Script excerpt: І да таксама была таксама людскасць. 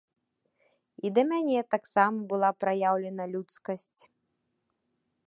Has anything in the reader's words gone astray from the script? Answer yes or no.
yes